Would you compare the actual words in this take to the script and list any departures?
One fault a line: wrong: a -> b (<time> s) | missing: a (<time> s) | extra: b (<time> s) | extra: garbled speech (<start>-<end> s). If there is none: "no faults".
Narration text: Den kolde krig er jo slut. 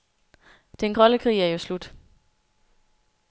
no faults